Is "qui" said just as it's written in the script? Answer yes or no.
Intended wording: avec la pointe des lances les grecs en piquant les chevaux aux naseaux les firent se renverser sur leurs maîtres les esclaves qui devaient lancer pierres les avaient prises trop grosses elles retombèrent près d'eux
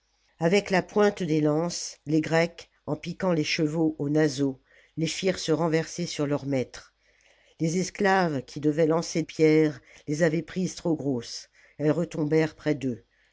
yes